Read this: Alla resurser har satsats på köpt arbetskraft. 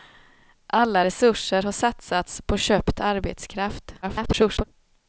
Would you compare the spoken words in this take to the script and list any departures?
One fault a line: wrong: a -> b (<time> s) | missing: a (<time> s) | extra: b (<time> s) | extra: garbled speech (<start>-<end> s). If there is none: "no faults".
extra: garbled speech (4.0-4.6 s)